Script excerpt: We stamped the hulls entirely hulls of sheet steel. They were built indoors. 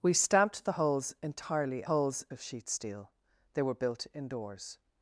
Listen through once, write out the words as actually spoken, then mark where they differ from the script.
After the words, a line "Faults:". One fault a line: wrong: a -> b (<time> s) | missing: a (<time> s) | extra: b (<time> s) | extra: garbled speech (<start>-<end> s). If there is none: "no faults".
We stamped the hulls entirely hulls of sheet steel. They were built indoors.
Faults:
no faults